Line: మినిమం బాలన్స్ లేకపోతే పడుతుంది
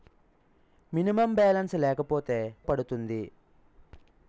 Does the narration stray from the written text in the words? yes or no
no